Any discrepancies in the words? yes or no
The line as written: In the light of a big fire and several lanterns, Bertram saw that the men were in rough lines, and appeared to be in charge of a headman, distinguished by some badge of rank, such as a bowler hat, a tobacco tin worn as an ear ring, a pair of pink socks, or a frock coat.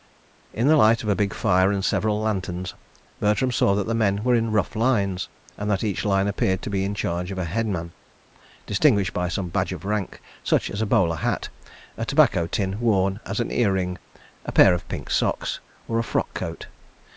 yes